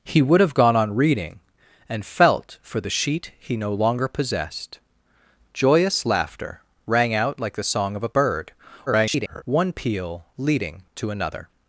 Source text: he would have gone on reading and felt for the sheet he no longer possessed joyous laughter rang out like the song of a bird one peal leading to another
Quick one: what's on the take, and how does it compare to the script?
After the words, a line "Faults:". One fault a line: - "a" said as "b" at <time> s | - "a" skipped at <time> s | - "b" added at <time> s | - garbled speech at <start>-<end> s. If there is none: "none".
he would have gone on reading and felt for the sheet he no longer possessed joyous laughter rang out like the song of a bird [garbled] one peal leading to another
Faults:
- garbled speech at 8.9-9.4 s